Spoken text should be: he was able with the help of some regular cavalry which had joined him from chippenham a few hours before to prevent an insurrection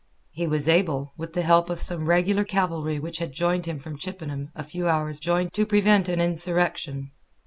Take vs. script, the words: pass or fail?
fail